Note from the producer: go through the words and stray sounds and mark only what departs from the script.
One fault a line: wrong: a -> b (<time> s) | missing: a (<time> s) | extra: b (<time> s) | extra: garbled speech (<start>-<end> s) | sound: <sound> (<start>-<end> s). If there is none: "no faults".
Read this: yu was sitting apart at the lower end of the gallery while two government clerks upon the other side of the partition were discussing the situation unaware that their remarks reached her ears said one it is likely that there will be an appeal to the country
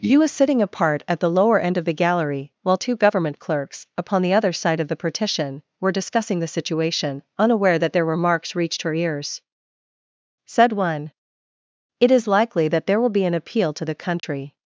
sound: dropout (14.2-14.2 s)